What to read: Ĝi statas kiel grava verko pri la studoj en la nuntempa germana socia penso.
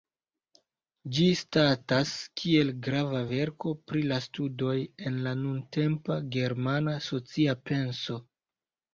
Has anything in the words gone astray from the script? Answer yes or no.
no